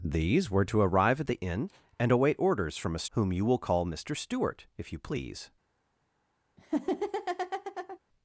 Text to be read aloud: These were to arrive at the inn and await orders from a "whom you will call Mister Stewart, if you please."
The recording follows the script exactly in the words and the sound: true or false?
false